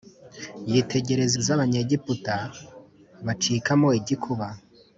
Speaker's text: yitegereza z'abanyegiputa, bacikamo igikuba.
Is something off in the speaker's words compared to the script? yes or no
no